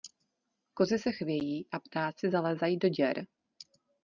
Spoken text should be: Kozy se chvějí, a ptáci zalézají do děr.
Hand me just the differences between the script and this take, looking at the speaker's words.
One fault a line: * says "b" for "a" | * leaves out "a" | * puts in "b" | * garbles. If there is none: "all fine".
all fine